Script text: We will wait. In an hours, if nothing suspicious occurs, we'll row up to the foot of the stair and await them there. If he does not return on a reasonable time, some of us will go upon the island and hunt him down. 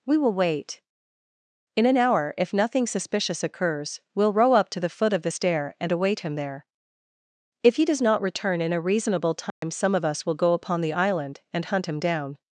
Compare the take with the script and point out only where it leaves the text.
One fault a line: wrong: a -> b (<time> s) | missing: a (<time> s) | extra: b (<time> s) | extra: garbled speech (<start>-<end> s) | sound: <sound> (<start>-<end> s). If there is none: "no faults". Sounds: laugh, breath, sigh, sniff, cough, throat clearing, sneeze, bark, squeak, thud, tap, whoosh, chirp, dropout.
wrong: hours -> hour (1.9 s)
wrong: them -> him (6.2 s)
wrong: on -> in (8.6 s)
sound: dropout (9.5-9.6 s)